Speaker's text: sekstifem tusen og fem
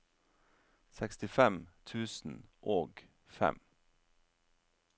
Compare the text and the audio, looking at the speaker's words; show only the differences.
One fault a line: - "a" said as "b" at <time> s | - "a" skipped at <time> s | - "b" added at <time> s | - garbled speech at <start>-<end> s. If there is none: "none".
none